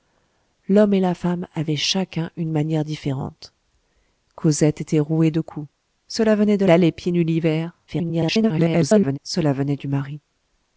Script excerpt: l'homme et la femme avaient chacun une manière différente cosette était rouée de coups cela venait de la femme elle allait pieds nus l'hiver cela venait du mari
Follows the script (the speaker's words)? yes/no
no